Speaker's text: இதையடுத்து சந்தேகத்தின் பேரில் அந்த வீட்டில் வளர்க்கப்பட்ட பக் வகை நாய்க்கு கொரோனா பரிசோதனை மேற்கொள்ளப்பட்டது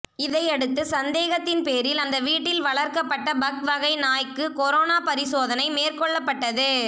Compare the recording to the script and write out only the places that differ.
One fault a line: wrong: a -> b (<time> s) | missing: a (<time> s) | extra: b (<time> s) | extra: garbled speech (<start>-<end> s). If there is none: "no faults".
no faults